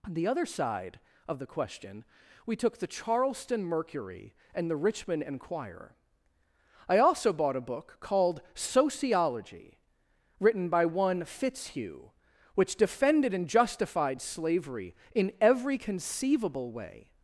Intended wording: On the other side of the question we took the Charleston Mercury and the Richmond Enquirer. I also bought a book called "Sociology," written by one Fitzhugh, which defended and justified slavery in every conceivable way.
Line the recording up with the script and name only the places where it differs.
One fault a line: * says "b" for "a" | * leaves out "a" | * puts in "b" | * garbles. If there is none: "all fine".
all fine